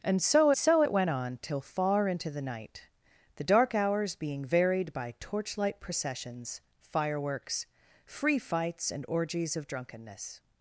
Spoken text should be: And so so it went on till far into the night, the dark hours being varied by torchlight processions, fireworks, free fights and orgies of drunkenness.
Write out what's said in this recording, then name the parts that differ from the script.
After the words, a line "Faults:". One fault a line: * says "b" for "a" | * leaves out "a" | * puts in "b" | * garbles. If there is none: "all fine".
And so so it went on till far into the night, the dark hours being varied by torchlight processions, fireworks, free fights and orgies of drunkenness.
Faults:
all fine